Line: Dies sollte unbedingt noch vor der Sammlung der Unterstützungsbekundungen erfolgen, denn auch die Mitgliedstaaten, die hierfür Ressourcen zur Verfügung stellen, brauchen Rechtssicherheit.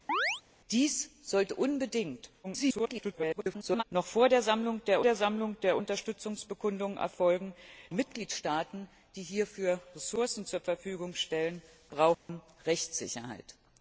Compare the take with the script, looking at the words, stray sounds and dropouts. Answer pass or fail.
fail